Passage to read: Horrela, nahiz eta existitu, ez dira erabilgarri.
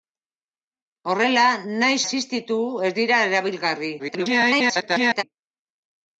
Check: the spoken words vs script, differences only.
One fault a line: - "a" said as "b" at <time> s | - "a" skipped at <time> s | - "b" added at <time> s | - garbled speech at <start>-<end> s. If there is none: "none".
- "eta" skipped at 2.0 s
- garbled speech at 4.0-5.2 s